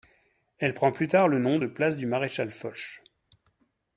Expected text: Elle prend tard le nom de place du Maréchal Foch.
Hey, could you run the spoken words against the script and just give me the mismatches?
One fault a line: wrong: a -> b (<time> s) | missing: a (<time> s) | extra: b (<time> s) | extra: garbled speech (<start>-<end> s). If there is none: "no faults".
extra: plus (0.9 s)